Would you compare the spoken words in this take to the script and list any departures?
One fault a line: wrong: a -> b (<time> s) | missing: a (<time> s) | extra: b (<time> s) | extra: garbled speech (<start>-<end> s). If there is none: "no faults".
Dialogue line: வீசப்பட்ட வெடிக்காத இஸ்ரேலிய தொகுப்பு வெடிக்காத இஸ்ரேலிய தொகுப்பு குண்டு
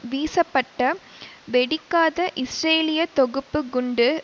missing: வெடிக்காத இஸ்ரேலிய தொகுப்பு (3.6 s)